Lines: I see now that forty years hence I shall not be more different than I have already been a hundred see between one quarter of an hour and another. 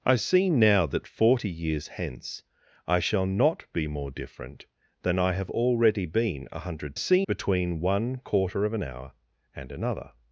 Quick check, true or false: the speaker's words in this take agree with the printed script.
true